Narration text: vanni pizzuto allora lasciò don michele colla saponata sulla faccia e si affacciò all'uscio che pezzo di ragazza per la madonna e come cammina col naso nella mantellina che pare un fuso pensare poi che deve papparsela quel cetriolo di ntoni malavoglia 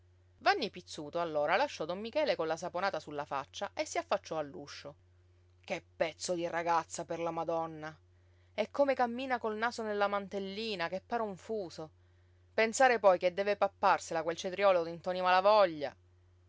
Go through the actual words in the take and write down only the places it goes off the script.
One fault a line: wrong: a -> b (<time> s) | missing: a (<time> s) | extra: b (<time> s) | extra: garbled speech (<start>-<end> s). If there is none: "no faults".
no faults